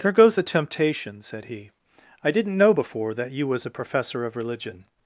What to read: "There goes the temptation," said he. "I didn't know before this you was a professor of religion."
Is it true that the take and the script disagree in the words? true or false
true